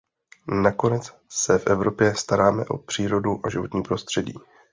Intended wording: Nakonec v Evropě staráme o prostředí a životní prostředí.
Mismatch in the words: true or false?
true